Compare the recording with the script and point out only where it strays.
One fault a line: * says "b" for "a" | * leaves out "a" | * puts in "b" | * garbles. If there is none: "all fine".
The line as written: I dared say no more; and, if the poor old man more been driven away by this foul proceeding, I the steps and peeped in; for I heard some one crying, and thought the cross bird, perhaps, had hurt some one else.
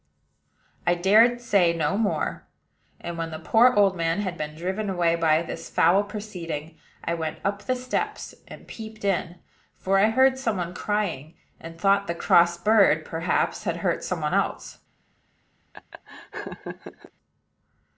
* says "when" for "if"
* says "had" for "more"
* puts in "went up"